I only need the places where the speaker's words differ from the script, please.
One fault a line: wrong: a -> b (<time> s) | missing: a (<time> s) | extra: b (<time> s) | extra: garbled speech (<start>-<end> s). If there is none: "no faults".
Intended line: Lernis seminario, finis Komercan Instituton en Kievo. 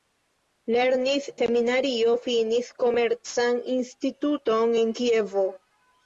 no faults